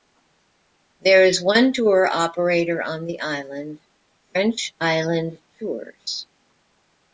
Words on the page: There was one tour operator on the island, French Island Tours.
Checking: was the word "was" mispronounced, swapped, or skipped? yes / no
yes